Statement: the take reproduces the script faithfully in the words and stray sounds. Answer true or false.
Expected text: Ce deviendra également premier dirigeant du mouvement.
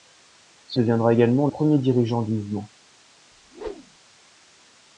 false